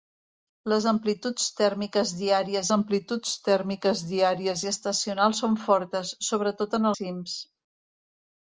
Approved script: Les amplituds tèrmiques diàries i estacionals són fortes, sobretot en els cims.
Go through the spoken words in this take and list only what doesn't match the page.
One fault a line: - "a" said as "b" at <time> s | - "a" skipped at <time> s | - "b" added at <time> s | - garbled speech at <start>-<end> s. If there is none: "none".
- "amplituds tèrmiques diàries" added at 2.8 s
- "els" skipped at 6.9 s